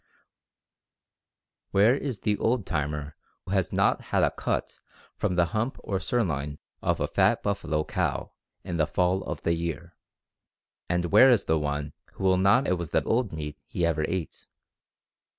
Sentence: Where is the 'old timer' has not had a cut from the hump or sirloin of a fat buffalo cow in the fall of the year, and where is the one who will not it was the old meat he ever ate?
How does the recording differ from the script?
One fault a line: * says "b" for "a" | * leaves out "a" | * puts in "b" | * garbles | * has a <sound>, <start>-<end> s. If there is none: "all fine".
all fine